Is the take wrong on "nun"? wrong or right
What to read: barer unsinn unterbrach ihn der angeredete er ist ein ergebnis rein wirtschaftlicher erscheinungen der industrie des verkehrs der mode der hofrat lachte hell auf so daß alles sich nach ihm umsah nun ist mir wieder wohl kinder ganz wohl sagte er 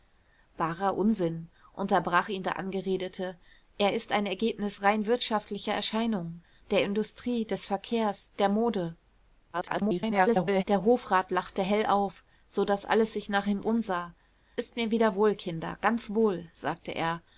wrong